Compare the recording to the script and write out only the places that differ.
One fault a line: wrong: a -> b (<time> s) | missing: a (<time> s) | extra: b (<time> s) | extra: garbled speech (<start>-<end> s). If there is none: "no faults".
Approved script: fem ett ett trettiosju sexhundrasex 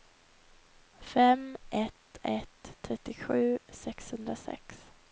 no faults